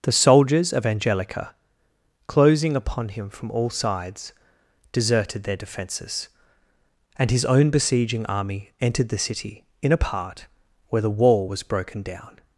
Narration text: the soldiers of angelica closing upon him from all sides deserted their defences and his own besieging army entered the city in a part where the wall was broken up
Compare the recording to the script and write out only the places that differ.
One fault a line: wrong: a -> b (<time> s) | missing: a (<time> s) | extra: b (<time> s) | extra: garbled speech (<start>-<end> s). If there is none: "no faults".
wrong: up -> down (12.0 s)